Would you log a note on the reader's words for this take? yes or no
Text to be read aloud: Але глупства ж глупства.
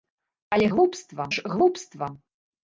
no